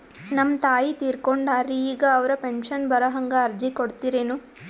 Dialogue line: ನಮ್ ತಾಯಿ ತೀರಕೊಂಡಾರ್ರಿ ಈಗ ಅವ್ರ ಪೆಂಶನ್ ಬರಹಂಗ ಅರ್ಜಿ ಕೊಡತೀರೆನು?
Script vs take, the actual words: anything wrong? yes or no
no